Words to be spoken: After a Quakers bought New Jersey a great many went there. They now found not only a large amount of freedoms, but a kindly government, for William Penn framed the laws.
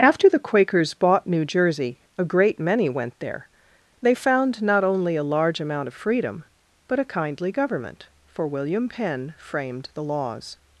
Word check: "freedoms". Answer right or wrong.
wrong